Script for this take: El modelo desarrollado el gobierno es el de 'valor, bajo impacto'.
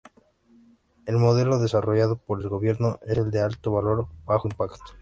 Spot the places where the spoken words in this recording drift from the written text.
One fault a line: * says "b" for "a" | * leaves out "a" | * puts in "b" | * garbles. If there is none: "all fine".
* puts in "por"
* puts in "alto"